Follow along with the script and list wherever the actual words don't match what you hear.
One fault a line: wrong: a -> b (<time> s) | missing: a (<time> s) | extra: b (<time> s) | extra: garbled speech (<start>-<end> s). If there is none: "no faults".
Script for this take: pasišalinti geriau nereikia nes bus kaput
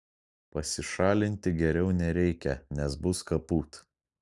no faults